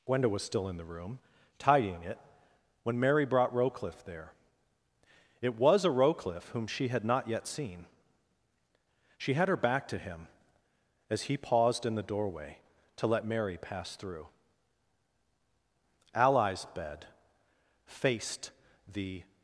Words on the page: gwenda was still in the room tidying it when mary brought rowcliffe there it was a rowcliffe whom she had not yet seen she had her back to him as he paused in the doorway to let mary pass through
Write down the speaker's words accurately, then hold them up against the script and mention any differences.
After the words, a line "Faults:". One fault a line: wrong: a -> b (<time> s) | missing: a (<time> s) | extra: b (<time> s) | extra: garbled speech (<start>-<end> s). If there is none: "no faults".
gwenda was still in the room tidying it when mary brought rowcliffe there it was a rowcliffe whom she had not yet seen she had her back to him as he paused in the doorway to let mary pass through ally's bed faced the
Faults:
extra: ally's bed faced the (16.1 s)